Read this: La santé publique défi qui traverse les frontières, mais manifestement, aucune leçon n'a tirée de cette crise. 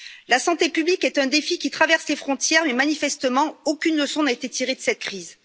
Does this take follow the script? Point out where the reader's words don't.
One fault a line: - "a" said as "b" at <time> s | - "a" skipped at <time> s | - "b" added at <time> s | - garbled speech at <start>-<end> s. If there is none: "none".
- "est un" added at 1.0 s
- "été" added at 4.3 s